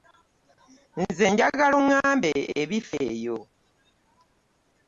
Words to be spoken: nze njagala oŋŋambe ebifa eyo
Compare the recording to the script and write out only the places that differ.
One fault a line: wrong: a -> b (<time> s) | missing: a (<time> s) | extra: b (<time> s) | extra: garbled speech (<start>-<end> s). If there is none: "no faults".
no faults